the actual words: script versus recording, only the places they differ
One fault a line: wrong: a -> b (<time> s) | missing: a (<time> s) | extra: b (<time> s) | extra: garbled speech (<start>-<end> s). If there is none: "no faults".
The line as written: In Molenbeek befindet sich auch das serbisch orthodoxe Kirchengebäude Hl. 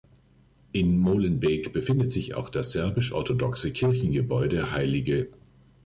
no faults